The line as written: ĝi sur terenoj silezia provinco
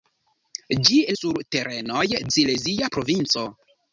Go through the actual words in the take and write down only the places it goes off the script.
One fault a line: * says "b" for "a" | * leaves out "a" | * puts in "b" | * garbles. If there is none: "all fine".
all fine